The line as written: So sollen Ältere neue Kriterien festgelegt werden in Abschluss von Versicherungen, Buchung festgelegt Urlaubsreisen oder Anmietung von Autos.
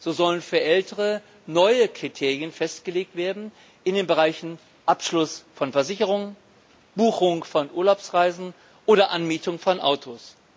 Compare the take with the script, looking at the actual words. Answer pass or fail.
fail